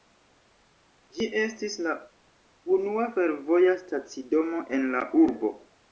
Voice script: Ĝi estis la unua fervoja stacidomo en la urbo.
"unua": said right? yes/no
yes